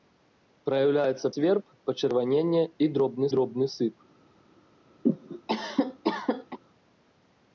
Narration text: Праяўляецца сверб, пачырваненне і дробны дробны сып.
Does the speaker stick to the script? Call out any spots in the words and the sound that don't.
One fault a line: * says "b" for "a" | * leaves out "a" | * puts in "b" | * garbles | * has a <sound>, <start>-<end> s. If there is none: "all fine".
* has a cough, 5.0-6.6 s